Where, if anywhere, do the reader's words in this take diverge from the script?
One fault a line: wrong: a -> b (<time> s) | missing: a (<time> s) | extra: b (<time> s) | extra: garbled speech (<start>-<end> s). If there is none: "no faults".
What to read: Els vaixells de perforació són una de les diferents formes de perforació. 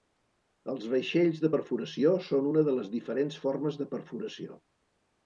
no faults